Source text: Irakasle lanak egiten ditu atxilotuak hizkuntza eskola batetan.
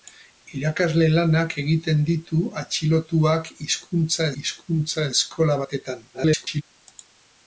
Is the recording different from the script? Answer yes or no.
yes